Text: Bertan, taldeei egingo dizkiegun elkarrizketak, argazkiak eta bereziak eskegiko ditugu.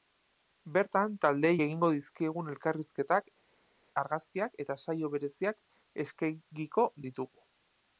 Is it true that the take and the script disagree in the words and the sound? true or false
true